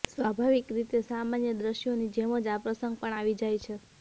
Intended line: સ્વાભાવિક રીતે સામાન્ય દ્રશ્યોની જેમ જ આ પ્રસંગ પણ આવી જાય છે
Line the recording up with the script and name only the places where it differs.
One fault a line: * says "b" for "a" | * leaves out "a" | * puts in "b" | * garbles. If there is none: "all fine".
all fine